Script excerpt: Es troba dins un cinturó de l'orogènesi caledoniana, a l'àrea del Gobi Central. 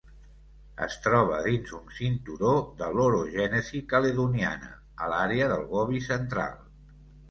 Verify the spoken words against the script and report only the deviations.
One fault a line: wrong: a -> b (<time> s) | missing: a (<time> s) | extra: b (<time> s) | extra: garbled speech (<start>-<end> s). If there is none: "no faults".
no faults